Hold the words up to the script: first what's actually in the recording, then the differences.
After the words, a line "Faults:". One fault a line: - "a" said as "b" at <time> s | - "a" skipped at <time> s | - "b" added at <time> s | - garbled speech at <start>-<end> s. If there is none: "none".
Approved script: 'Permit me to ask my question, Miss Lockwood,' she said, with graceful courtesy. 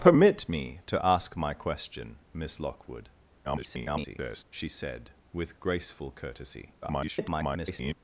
'Permit me to ask my question, Miss Lockwood,' [garbled] she said, with graceful courtesy. [garbled]
Faults:
- garbled speech at 3.4-4.4 s
- garbled speech at 6.8-7.9 s